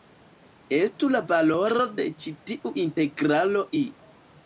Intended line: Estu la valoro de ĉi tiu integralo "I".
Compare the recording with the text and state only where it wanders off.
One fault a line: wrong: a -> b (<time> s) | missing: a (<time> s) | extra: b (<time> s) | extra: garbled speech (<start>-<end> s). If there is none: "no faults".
no faults